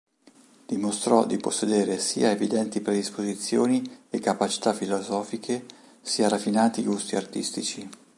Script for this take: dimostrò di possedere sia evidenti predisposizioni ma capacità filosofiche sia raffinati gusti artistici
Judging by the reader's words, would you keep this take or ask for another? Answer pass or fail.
fail